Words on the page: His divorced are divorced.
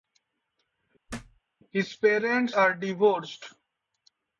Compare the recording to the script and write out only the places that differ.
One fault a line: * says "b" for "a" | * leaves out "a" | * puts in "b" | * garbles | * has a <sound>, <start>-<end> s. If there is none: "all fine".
* has a thud, 1.1-1.4 s
* says "parents" for "divorced"